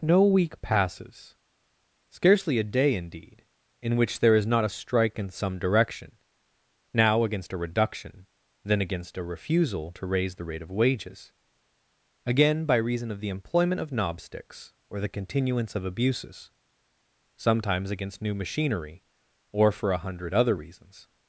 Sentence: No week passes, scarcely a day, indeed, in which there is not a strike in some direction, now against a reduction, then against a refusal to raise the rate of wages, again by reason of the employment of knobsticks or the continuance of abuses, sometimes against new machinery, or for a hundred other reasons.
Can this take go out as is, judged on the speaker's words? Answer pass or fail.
pass